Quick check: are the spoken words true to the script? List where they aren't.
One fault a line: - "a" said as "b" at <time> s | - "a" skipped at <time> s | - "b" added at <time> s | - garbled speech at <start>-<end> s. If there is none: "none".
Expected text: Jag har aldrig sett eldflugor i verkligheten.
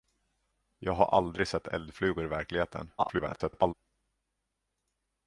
- garbled speech at 3.0-3.7 s